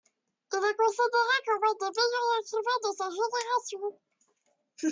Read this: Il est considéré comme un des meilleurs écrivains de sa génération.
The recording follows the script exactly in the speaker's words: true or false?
true